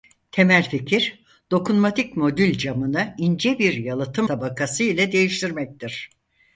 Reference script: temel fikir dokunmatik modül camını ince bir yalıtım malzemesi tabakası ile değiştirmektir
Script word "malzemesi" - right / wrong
wrong